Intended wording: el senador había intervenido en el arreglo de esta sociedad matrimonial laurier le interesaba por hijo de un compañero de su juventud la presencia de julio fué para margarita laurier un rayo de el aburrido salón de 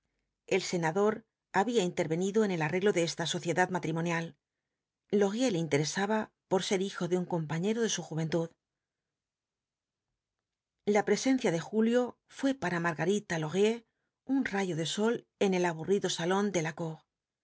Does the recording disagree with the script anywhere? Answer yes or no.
yes